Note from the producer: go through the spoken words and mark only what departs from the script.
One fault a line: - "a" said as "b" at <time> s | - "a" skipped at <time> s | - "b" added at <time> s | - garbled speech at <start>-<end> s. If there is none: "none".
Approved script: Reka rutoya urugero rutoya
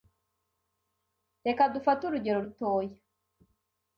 - "rutoya" said as "dufate" at 1.7 s